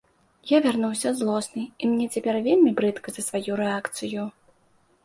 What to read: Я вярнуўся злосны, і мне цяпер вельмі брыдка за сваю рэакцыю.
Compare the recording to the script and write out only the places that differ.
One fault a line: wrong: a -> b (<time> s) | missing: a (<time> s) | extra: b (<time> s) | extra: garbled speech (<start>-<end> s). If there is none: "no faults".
no faults